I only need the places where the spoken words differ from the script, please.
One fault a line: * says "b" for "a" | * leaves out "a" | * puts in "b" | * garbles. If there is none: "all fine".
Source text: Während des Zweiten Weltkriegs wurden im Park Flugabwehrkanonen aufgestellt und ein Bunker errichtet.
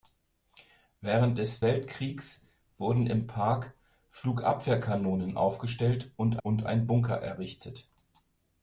* leaves out "Zweiten"
* puts in "und"